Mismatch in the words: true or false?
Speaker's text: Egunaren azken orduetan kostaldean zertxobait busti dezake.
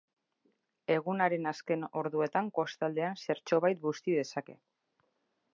false